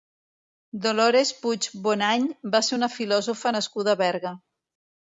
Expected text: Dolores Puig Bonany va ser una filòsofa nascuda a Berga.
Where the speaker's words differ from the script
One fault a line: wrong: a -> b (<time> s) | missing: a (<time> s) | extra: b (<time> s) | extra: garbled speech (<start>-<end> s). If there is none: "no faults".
no faults